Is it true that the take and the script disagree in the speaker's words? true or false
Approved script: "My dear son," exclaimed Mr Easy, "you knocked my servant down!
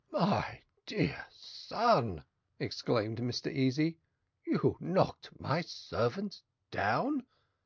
false